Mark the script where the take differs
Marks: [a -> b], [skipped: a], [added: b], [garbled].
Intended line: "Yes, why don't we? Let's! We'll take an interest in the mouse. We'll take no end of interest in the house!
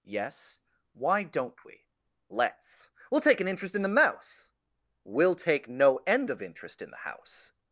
"Yes, why don't we? Let's! We'll take an interest in the mouse. We'll take no end of interest in the house!